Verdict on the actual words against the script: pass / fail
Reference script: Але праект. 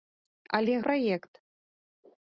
pass